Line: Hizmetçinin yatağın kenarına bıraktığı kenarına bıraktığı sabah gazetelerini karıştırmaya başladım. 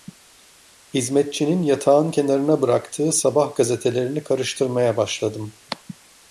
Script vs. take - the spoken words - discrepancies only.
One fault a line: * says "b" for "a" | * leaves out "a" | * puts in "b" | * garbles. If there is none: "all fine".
* leaves out "kenarına bıraktığı"